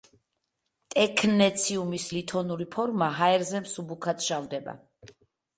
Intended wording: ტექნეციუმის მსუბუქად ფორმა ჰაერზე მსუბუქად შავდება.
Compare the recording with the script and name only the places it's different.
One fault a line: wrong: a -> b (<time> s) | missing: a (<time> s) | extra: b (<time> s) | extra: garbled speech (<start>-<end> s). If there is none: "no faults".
wrong: მსუბუქად -> ლითონური (2.2 s)